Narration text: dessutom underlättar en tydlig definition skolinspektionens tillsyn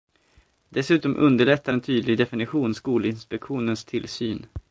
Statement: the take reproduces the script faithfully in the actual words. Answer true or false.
true